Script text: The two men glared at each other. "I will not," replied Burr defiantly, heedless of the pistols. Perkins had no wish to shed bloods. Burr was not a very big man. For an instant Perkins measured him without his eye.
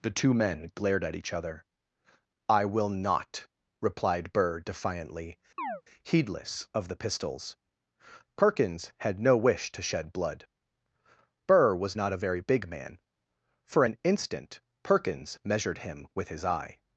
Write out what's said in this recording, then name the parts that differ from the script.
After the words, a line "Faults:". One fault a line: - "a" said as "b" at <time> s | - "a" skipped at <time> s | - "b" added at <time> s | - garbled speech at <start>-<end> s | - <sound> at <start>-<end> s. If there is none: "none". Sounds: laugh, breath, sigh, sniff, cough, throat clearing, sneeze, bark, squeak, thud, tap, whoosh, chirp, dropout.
The two men glared at each other. "I will not," replied Burr defiantly, heedless of the pistols. Perkins had no wish to shed blood. Burr was not a very big man. For an instant Perkins measured him with his eye.
Faults:
- chirp at 5.6-5.8 s
- "bloods" said as "blood" at 10.1 s
- "without" said as "with" at 16.1 s